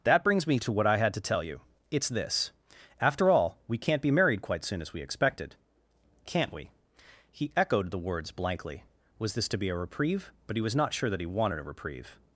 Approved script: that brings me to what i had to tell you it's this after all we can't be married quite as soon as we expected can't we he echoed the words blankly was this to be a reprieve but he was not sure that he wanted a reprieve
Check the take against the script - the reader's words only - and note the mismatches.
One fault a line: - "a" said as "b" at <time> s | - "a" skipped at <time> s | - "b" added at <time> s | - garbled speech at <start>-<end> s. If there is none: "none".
- "as" skipped at 4.6 s